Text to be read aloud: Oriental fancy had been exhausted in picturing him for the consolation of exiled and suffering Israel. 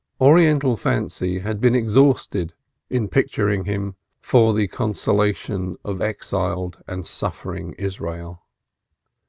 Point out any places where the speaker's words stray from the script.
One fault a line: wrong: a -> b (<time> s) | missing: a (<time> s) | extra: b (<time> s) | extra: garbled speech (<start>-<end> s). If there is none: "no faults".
no faults